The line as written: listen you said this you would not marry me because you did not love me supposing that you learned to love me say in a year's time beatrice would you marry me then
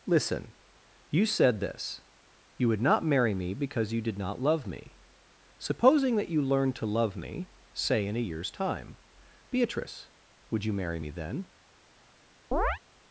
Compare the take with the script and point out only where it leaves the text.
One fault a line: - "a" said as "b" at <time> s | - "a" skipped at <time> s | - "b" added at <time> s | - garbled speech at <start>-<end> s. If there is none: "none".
none